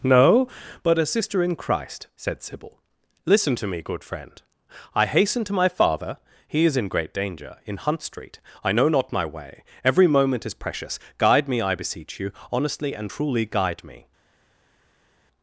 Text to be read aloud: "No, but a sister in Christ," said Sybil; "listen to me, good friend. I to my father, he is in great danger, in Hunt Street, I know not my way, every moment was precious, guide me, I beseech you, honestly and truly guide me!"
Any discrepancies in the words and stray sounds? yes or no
yes